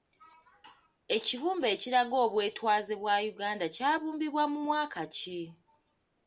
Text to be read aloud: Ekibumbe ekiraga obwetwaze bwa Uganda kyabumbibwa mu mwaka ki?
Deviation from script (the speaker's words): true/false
false